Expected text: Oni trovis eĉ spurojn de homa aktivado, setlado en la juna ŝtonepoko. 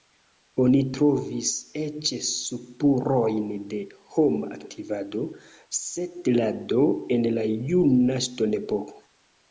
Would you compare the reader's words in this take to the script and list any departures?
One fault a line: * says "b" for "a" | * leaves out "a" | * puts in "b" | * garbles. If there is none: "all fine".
all fine